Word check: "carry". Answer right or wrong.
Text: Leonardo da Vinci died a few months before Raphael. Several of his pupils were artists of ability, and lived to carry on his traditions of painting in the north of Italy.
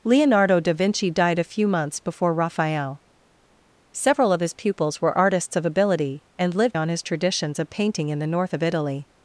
wrong